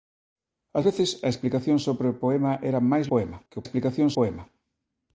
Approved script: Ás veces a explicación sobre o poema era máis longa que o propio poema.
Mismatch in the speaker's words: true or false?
true